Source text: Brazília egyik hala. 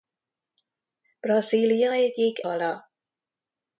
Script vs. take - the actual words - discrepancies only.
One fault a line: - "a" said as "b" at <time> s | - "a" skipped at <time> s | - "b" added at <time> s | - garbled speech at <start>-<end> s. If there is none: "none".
none